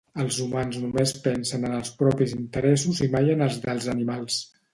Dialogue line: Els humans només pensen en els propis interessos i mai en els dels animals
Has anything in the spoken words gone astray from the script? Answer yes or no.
no